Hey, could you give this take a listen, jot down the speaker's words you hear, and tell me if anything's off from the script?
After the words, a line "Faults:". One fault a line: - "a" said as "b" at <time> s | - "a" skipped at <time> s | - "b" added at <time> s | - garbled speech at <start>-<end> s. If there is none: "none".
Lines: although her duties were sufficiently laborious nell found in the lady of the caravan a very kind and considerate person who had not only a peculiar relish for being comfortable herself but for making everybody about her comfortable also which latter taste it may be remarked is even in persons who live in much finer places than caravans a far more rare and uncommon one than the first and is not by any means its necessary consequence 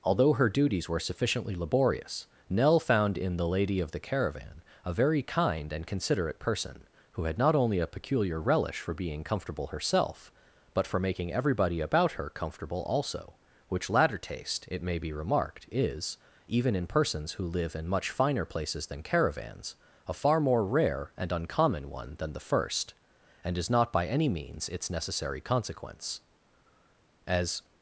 although her duties were sufficiently laborious nell found in the lady of the caravan a very kind and considerate person who had not only a peculiar relish for being comfortable herself but for making everybody about her comfortable also which latter taste it may be remarked is even in persons who live in much finer places than caravans a far more rare and uncommon one than the first and is not by any means its necessary consequence as
Faults:
- "as" added at 27.3 s